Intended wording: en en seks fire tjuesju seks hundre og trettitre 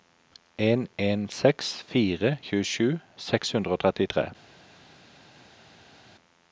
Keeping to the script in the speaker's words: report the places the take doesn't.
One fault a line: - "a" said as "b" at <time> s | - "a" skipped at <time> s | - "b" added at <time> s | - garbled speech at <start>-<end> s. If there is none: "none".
none